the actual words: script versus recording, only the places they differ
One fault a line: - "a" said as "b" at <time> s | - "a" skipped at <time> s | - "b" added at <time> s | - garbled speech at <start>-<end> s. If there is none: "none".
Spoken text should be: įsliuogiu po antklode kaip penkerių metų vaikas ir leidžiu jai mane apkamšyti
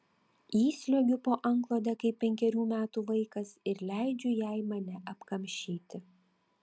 none